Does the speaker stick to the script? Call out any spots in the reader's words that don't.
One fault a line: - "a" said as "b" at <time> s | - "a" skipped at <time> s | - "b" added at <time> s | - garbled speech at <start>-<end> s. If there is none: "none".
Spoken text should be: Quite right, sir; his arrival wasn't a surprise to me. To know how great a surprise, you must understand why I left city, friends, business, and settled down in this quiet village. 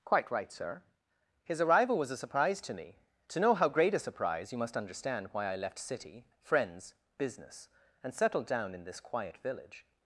- "wasn't" said as "was" at 2.0 s